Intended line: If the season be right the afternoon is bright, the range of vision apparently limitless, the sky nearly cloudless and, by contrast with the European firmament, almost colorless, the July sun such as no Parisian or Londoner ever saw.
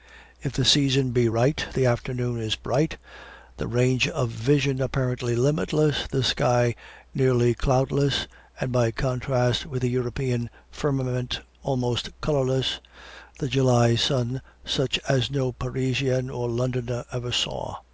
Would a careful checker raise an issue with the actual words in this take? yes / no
no